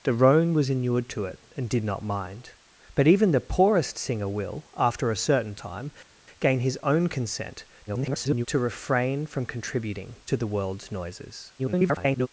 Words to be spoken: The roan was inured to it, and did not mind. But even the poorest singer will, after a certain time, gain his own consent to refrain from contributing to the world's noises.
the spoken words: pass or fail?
fail